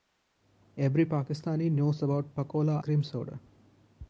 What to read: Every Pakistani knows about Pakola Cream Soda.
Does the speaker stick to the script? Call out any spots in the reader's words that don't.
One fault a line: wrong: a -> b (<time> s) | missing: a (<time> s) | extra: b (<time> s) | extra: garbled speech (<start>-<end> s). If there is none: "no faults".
no faults